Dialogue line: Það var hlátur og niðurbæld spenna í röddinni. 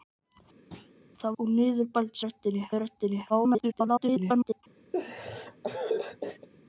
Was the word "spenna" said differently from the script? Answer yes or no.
yes